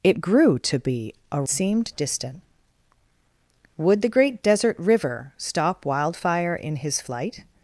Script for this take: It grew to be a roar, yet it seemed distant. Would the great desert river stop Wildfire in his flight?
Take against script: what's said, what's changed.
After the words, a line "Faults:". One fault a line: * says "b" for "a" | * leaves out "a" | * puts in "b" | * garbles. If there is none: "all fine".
It grew to be a seemed distant. Would the great desert river stop Wildfire in his flight?
Faults:
* leaves out "roar yet it"